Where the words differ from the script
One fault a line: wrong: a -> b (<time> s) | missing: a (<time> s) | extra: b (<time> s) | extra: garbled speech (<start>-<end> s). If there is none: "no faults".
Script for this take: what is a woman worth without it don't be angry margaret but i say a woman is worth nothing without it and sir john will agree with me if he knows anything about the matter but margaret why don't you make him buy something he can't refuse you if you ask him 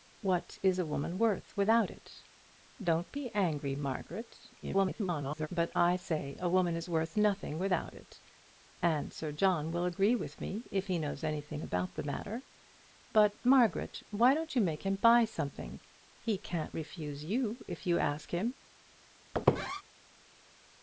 extra: garbled speech (4.6-5.5 s)